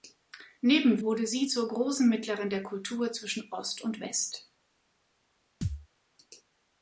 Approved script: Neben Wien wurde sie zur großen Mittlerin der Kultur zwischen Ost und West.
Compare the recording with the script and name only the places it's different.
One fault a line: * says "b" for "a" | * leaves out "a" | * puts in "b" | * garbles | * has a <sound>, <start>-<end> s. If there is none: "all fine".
* leaves out "Wien"
* has a thud, 5.6-5.9 s